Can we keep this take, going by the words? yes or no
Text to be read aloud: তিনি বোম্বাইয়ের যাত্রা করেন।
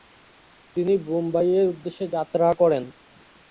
no